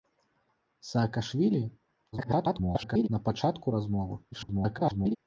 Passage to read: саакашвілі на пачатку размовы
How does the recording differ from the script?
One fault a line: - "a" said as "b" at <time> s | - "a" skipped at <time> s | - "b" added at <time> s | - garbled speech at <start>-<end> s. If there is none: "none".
- garbled speech at 2.1-3.1 s
- garbled speech at 4.3-5.2 s